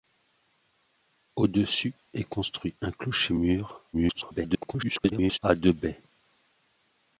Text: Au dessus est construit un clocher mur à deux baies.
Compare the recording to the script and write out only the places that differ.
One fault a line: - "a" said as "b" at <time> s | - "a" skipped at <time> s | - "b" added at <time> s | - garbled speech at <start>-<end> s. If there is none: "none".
- garbled speech at 3.9-5.4 s